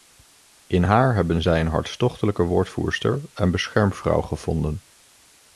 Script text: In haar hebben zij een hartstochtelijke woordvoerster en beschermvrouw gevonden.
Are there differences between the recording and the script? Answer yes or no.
no